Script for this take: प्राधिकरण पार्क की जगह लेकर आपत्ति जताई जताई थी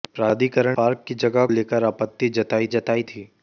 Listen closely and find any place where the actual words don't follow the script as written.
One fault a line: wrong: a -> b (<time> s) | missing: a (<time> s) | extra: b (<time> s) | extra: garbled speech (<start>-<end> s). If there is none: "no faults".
no faults